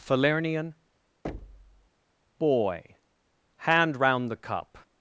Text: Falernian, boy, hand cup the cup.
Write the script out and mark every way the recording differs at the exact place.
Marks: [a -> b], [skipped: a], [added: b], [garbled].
Falernian, boy, hand [cup -> round] the cup.